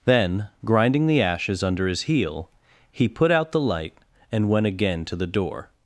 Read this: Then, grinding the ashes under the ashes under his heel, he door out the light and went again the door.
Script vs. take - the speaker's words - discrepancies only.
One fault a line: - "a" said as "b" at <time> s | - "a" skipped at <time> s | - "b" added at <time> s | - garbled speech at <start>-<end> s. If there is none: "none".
- "the ashes under" skipped at 1.9 s
- "door" said as "put" at 3.1 s
- "to" added at 5.0 s